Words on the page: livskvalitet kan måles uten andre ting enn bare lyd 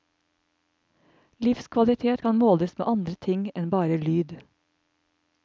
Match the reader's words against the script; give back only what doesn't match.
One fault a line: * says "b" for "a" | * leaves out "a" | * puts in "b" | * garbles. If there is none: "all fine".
* says "med" for "uten"